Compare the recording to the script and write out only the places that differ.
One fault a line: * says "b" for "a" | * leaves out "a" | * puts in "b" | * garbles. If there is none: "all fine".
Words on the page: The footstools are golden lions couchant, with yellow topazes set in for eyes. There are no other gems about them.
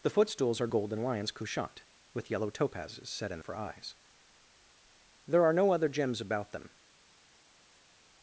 all fine